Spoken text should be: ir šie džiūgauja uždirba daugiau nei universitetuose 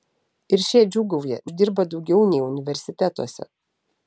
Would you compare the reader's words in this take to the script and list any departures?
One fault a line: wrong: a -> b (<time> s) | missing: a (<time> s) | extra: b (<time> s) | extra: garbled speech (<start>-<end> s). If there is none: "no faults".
no faults